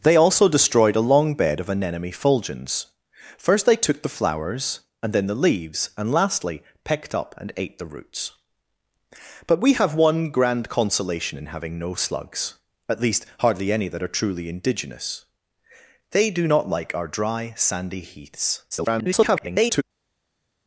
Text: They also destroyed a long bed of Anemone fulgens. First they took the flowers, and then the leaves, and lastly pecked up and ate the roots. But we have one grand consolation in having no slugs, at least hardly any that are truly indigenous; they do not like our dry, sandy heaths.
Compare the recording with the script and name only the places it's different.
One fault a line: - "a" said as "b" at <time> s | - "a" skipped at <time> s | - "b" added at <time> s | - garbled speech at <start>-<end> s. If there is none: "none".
- garbled speech at 18.7-19.8 s